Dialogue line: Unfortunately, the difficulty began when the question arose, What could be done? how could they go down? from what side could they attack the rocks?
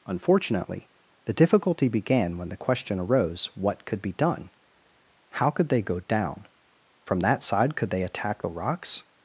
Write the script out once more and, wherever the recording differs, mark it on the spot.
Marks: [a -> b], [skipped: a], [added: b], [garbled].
Unfortunately, the difficulty began when the question arose, What could be done? how could they go down? from [what -> that] side could they attack the rocks?